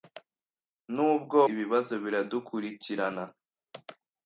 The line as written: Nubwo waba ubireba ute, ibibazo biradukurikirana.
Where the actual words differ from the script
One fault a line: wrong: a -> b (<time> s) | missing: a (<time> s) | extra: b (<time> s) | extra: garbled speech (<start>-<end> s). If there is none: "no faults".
missing: waba ubireba ute (1.4 s)